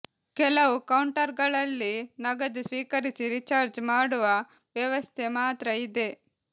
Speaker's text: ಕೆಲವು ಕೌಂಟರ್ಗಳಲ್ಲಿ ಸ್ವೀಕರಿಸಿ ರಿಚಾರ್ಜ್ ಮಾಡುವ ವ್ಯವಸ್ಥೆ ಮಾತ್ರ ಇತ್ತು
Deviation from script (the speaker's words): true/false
true